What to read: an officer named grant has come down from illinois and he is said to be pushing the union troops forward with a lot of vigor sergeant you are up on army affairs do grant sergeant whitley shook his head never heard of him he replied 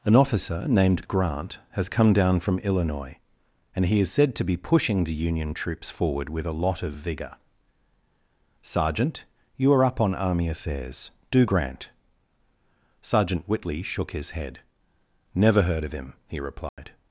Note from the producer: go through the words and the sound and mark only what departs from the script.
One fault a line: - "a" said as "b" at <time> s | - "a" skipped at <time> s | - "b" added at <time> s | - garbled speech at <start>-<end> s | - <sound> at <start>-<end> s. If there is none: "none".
- dropout at 16.7-16.8 s